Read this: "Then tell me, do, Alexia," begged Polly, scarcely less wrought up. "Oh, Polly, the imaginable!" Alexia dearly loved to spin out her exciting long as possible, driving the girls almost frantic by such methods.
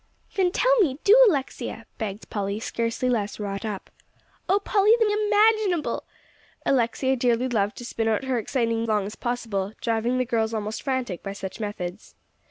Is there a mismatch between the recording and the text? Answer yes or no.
no